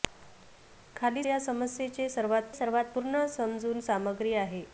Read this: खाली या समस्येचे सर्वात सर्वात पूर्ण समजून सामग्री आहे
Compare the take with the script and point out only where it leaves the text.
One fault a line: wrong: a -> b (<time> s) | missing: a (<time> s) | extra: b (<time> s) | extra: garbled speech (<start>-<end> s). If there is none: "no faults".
no faults